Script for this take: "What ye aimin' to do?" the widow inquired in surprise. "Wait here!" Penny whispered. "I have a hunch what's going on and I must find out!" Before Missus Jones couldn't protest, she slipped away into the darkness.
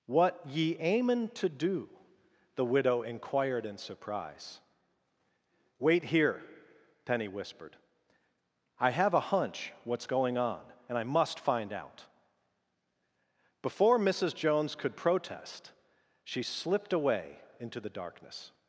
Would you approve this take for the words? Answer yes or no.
no